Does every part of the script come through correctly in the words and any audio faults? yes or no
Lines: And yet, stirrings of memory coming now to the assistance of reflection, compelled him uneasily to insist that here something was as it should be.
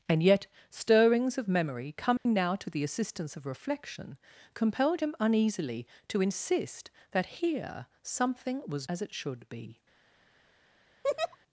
no